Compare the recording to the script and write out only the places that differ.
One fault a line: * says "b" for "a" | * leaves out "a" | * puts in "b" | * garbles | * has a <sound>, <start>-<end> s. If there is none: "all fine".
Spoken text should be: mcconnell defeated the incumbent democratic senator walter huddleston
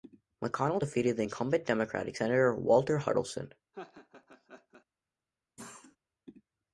* has a laugh, 3.7-4.9 s
* has a cough, 5.6-6.0 s